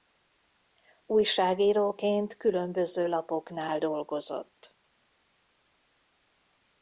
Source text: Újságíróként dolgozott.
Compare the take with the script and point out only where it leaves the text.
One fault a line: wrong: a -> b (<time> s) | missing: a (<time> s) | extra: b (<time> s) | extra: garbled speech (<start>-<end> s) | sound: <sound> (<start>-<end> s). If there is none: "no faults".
extra: különböző lapoknál (2.4 s)